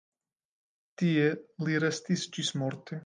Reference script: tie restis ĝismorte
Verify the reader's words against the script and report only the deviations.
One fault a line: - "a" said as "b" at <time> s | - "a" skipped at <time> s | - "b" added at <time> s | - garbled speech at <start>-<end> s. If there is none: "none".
- "li" added at 1.7 s